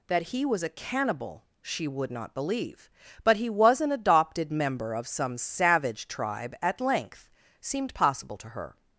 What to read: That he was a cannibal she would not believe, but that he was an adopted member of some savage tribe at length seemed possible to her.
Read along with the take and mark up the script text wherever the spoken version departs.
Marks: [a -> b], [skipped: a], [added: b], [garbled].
That he was a cannibal she would not believe, but [skipped: that] he was an adopted member of some savage tribe at length seemed possible to her.